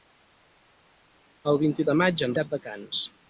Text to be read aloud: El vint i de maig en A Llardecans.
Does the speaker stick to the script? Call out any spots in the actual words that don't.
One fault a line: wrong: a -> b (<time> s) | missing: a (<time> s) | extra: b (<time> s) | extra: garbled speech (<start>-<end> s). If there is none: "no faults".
no faults